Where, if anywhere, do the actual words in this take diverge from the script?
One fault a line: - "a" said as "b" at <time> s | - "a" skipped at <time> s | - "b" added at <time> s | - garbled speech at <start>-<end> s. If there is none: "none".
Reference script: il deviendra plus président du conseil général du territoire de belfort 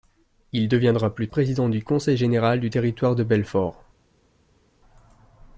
none